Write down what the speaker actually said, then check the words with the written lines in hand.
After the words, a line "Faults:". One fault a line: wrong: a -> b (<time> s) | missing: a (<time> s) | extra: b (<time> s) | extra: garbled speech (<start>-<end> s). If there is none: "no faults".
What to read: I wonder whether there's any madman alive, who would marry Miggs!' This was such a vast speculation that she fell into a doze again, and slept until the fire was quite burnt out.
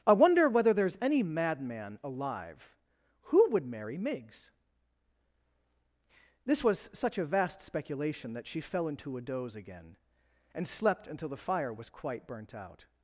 I wonder whether there's any madman alive, who would marry Miggs!' This was such a vast speculation that she fell into a doze again, and slept until the fire was quite burnt out.
Faults:
no faults